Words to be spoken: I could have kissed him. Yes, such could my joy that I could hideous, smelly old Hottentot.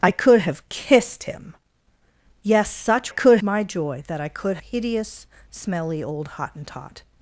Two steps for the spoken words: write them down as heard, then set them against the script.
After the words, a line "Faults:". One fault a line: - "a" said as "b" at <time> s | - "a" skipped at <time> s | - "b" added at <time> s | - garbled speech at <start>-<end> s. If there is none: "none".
I could have kissed him. Yes, such could my joy that I could hideous, smelly old Hottentot.
Faults:
none